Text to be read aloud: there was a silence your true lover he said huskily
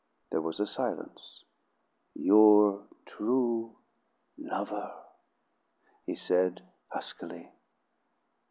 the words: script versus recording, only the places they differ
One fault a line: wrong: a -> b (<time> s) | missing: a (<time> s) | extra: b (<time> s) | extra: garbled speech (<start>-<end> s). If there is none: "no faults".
no faults